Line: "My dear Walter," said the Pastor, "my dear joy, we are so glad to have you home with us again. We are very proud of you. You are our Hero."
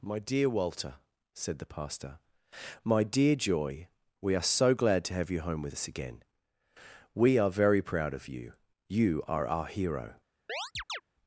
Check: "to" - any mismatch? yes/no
no